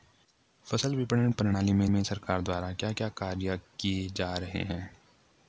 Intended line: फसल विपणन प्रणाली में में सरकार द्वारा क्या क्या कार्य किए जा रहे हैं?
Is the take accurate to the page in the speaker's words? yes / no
yes